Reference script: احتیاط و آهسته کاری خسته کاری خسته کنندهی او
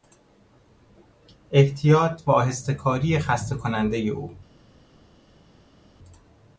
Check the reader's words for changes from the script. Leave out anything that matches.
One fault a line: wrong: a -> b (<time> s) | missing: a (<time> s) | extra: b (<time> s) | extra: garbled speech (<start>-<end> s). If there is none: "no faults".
missing: کاری خسته (3.6 s)